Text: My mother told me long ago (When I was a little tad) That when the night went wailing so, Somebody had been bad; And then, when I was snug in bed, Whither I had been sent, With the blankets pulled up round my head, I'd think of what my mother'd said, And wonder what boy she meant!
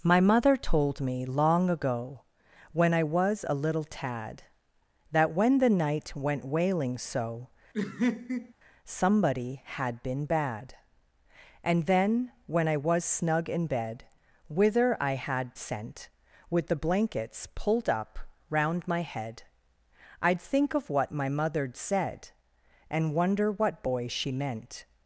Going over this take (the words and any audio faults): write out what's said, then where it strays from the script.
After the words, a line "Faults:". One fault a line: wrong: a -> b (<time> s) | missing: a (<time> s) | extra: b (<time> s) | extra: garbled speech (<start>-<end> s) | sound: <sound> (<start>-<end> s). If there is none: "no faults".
My mother told me long ago (When I was a little tad) That when the night went wailing so, Somebody had been bad; And then, when I was snug in bed, Whither I had sent, With the blankets pulled up round my head, I'd think of what my mother'd said, And wonder what boy she meant!
Faults:
sound: laugh (7.7-8.5 s)
missing: been (15.5 s)